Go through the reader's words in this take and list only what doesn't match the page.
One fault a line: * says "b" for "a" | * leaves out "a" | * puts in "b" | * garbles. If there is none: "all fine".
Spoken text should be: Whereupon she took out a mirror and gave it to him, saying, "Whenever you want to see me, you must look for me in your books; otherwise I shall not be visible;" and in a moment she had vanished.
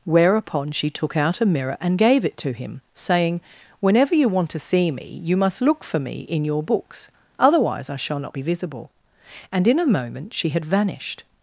all fine